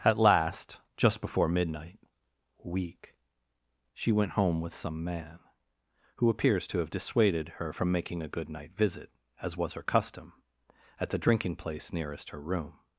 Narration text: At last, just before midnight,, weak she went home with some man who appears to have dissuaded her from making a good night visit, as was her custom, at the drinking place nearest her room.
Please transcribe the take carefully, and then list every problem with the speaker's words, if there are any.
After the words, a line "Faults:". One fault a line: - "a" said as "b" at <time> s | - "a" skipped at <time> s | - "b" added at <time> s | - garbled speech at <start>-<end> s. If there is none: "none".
At last, just before midnight,, weak she went home with some man who appears to have dissuaded her from making a good night visit, as was her custom, at the drinking place nearest her room.
Faults:
none